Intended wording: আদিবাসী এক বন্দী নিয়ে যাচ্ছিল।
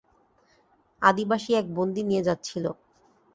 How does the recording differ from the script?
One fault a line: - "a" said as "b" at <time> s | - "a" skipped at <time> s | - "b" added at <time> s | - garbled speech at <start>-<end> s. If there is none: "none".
none